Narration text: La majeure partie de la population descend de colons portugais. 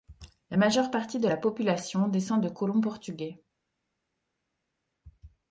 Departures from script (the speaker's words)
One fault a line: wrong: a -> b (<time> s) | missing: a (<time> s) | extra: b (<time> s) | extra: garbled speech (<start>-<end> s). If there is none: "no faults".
no faults